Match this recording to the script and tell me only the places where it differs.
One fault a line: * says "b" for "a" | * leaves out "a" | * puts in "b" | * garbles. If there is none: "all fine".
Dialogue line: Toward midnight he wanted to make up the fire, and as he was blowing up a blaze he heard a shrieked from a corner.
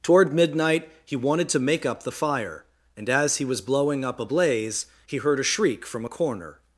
* says "shriek" for "shrieked"